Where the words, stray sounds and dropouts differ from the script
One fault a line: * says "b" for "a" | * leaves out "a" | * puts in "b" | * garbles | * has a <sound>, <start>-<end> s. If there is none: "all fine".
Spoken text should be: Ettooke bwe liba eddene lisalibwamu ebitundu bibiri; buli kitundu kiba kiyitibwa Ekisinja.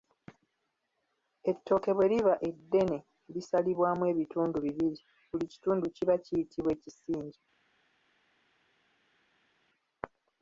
all fine